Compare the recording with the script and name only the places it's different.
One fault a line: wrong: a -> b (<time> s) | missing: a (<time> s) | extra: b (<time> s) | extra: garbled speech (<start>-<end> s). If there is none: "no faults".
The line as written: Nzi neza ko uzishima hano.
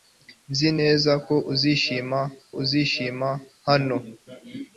extra: uzishima (2.6 s)